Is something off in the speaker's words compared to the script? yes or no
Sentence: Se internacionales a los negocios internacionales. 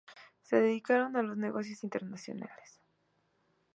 yes